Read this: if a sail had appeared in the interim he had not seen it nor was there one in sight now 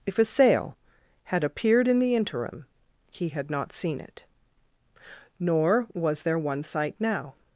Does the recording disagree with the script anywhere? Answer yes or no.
yes